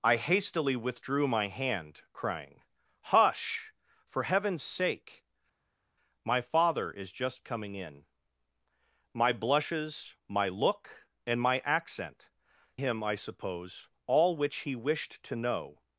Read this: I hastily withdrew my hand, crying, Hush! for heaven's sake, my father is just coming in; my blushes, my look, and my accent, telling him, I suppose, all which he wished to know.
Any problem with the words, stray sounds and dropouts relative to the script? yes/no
yes